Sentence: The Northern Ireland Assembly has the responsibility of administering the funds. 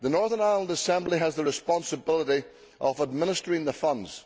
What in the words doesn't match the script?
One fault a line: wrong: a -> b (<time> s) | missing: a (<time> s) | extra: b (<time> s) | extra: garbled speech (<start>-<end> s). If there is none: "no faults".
no faults